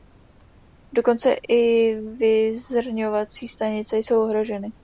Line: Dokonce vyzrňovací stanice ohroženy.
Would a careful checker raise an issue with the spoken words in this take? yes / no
yes